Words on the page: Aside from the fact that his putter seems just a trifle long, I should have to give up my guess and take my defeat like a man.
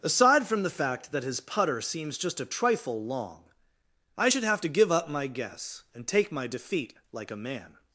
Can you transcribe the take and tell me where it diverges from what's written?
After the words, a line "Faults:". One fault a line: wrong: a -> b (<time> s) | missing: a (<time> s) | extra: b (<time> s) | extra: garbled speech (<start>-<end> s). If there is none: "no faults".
Aside from the fact that his putter seems just a trifle long, I should have to give up my guess and take my defeat like a man.
Faults:
no faults